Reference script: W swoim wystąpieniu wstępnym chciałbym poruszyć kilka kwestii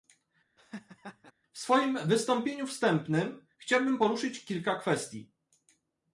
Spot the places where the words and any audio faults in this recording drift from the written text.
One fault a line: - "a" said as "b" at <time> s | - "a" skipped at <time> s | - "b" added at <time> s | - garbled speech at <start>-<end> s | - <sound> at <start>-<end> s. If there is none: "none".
- laugh at 0.6-1.3 s